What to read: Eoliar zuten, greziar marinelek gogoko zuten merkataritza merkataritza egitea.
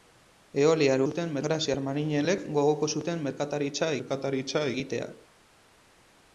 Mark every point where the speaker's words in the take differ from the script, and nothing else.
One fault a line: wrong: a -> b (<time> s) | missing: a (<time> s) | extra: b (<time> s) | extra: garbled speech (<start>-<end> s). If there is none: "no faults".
no faults